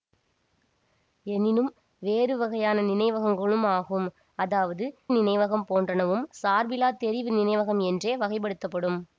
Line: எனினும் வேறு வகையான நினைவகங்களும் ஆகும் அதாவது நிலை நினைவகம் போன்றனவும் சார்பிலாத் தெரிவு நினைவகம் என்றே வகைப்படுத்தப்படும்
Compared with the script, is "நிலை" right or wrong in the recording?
wrong